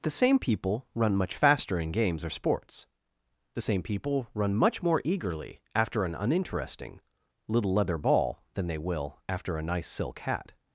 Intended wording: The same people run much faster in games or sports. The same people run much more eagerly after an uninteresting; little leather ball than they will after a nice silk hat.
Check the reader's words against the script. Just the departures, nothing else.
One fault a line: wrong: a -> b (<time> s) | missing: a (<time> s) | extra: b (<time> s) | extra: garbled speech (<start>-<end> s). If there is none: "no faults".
no faults